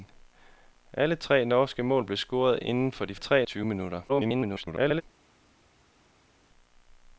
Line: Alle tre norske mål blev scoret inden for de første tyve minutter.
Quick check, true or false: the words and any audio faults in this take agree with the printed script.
false